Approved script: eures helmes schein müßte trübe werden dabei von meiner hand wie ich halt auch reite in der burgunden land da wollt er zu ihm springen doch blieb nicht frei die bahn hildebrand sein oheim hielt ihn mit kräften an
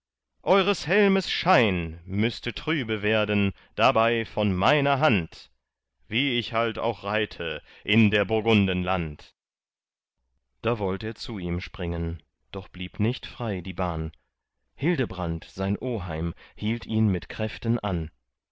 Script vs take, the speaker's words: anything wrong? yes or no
no